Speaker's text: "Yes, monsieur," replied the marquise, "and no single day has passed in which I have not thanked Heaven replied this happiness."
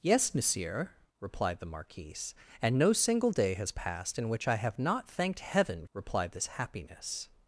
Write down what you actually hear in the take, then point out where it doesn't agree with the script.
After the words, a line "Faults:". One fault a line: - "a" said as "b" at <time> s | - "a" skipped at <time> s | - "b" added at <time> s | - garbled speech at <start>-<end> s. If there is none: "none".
"Yes, monsieur," replied the marquise, "and no single day has passed in which I have not thanked Heaven replied this happiness."
Faults:
none